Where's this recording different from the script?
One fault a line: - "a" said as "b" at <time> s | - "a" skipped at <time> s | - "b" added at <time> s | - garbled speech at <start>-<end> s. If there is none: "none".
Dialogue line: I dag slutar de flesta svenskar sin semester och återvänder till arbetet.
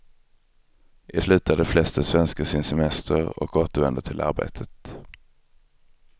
- "dag" skipped at 1.2 s